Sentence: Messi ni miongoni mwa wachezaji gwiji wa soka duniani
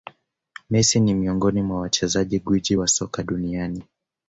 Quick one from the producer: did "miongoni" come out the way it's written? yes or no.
yes